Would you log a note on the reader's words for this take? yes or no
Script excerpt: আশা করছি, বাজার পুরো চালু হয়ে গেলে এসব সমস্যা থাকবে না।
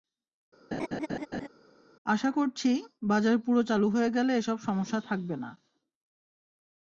no